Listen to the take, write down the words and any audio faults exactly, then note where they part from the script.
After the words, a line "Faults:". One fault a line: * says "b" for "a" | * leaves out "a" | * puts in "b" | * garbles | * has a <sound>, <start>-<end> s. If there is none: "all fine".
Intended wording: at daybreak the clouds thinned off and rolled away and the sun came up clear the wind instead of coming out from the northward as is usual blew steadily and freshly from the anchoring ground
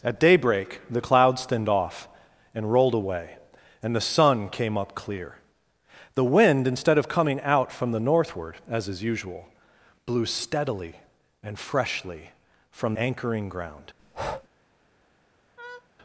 at daybreak the clouds thinned off and rolled away and the sun came up clear the wind instead of coming out from the northward as is usual blew steadily and freshly from anchoring ground
Faults:
* leaves out "the"
* has a breath, 14.0-14.5 s
* has a laugh, 15.6-15.9 s